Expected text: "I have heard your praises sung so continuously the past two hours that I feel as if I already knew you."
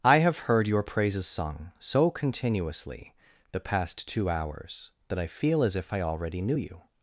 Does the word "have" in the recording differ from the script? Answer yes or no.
no